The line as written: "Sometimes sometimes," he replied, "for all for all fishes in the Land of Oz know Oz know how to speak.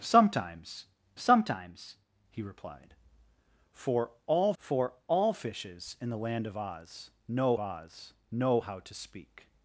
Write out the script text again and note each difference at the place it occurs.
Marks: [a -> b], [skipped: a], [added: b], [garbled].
"Sometimes sometimes," he replied, "for all for all fishes in the Land of Oz know Oz know how to speak.